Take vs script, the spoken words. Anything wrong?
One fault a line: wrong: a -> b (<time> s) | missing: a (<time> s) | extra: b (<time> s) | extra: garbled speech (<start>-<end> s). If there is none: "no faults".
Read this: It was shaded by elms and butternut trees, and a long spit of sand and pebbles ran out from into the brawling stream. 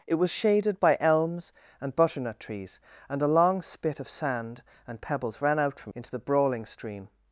no faults